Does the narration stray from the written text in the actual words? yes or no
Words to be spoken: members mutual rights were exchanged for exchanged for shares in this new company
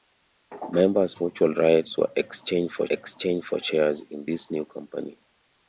no